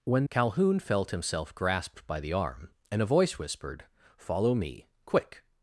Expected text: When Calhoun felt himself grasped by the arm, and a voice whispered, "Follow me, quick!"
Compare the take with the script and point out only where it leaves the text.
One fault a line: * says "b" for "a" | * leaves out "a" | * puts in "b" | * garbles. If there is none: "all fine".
all fine